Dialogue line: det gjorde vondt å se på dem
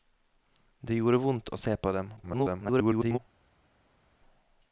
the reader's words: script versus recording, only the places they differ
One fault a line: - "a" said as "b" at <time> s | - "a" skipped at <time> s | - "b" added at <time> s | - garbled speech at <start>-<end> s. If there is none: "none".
- garbled speech at 2.2-3.2 s